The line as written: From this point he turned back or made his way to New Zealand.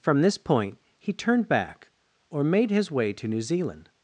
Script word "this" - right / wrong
right